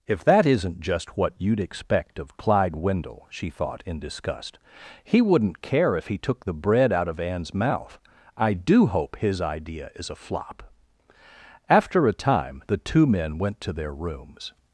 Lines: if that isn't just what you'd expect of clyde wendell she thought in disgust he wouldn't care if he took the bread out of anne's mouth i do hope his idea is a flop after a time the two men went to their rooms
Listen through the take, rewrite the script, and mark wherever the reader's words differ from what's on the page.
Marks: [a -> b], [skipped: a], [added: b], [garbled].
if that isn't just what you'd expect of clyde wendell she thought in disgust he wouldn't care if he took the bread out of anne's mouth i do hope his idea is a flop after a time the two men went to their rooms